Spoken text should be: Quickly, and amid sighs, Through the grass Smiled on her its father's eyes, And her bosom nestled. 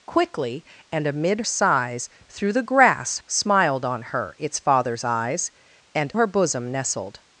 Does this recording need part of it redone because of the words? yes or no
no